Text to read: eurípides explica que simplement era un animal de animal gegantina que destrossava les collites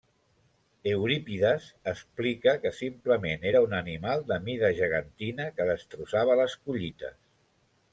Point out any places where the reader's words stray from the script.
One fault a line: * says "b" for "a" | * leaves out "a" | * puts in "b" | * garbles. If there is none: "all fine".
* says "mida" for "animal"